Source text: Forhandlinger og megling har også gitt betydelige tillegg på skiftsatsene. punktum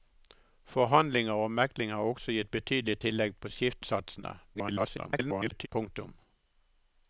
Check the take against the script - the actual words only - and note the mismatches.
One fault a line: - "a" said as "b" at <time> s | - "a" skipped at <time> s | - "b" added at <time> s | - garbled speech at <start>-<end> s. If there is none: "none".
- garbled speech at 4.5-5.7 s